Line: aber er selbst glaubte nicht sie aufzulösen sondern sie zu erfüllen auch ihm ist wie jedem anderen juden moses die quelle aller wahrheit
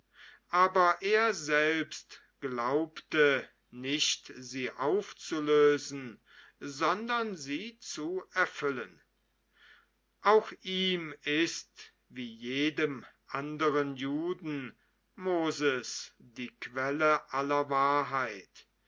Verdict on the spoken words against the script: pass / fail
pass